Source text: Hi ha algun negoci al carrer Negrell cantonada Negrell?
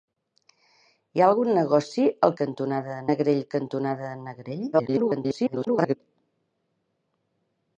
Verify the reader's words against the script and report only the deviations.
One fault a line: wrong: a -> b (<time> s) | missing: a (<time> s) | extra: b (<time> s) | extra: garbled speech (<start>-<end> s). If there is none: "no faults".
wrong: carrer -> cantonada (2.4 s)
extra: garbled speech (4.7-6.0 s)